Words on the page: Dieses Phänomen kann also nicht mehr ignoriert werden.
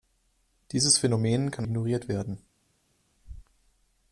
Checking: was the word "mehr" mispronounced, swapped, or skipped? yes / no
yes